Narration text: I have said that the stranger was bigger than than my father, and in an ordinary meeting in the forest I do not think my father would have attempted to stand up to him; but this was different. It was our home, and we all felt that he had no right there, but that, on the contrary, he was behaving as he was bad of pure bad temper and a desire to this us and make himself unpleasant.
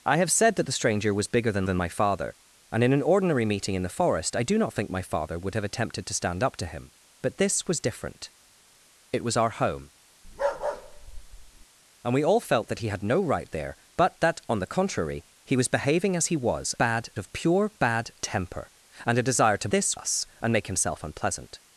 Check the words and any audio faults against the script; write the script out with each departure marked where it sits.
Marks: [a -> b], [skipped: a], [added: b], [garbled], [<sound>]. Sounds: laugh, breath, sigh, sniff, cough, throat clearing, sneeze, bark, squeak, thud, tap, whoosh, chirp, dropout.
I have said that the stranger was bigger than than my father, and in an ordinary meeting in the forest I do not think my father would have attempted to stand up to him; but this was different. It was our home, [bark] and we all felt that he had no right there, but that, on the contrary, he was behaving as he was bad of pure bad temper and a desire to this us and make himself unpleasant.